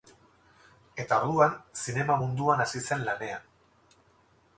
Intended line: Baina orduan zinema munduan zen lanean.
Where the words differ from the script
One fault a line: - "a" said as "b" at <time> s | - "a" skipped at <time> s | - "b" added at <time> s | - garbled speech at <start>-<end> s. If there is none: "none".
- "Baina" said as "Eta" at 1.0 s
- "hasi" added at 2.7 s